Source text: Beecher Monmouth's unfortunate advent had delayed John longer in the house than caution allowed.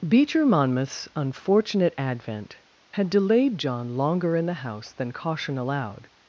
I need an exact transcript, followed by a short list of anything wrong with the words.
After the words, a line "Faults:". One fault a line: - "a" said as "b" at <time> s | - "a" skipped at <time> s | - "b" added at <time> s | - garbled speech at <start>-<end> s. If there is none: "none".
Beecher Monmouth's unfortunate advent had delayed John longer in the house than caution allowed.
Faults:
none